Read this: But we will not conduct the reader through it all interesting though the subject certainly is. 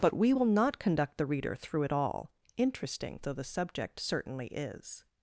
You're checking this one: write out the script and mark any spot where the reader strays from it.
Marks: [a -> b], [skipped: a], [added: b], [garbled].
But we will not conduct the reader through it all interesting though the subject certainly is.